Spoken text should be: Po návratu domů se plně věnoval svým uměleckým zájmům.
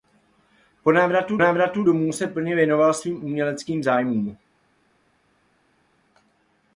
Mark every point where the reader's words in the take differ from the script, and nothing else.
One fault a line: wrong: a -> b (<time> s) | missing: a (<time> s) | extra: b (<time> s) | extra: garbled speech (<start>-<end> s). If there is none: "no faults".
extra: návratu (1.4 s)